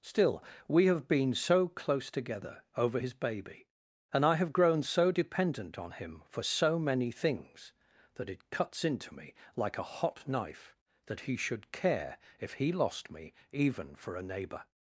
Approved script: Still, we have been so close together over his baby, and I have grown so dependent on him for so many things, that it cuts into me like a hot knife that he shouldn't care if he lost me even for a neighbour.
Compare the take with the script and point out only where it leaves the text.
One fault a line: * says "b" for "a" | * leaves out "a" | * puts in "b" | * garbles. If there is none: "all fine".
* says "should" for "shouldn't"